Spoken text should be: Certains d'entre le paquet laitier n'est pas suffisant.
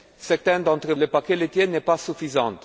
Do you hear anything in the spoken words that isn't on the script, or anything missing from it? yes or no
no